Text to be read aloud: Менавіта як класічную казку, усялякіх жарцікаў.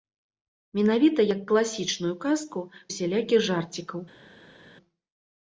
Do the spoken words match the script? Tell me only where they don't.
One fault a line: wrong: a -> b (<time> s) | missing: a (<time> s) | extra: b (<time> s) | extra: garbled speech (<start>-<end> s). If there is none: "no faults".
no faults